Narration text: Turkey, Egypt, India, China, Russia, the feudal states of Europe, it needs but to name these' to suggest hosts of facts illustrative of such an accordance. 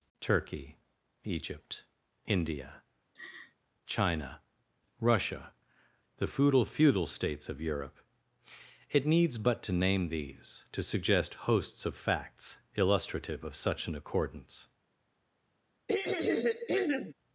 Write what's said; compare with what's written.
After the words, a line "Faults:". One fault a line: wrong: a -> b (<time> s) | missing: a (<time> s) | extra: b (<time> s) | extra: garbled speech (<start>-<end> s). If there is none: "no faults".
Turkey, Egypt, India, China, Russia, the feudal feudal states of Europe, it needs but to name these' to suggest hosts of facts illustrative of such an accordance.
Faults:
extra: feudal (6.6 s)